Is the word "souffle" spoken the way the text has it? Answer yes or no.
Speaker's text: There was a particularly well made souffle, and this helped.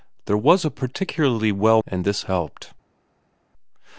no